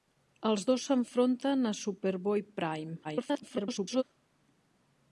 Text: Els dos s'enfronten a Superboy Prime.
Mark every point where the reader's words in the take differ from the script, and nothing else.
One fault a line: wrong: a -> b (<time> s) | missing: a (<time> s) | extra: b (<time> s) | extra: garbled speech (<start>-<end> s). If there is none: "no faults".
extra: garbled speech (3.0-4.0 s)